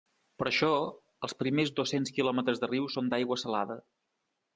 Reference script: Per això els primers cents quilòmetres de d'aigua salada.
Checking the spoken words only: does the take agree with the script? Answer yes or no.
no